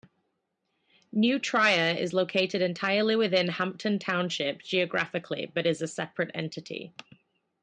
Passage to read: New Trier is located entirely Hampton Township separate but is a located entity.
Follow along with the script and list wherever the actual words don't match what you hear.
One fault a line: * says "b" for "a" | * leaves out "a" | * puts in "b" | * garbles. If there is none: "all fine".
* puts in "within"
* says "geographically" for "separate"
* says "separate" for "located"